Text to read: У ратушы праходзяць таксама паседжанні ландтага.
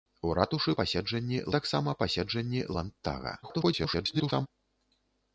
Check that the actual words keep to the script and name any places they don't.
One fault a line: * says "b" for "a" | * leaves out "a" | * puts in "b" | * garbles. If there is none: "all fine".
* says "паседжанні" for "праходзяць"
* garbles